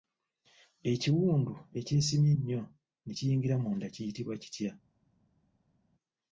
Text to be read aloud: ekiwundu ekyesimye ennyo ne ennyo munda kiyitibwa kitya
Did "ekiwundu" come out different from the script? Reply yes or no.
no